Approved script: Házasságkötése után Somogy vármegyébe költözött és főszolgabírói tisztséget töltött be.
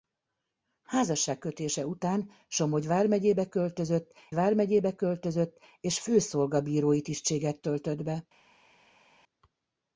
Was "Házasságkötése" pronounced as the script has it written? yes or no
yes